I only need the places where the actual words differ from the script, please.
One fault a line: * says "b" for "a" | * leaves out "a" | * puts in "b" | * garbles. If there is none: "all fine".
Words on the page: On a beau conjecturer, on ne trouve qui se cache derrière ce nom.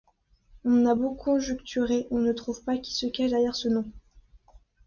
* puts in "pas"